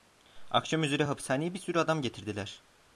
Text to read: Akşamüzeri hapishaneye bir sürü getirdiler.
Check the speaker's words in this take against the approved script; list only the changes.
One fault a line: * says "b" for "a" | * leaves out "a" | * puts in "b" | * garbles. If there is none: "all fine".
* puts in "adam"